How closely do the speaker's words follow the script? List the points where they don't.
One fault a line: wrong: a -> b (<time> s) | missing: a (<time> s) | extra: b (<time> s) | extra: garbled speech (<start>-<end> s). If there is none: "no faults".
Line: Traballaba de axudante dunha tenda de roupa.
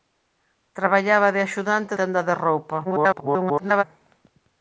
missing: dunha (1.9 s)
extra: garbled speech (2.8-3.8 s)